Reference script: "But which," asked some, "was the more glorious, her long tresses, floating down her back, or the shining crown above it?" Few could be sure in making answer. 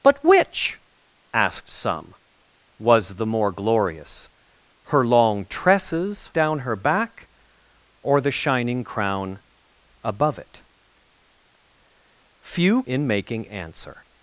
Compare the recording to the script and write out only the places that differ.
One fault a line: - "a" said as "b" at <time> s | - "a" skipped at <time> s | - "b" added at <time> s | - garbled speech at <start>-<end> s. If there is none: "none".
- "floating" skipped at 6.3 s
- "could be sure" skipped at 12.8 s